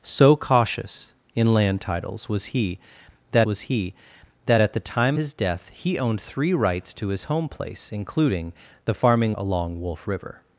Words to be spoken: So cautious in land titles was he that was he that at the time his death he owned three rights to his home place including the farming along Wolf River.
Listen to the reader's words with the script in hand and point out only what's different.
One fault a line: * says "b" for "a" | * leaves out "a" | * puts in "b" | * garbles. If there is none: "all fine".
all fine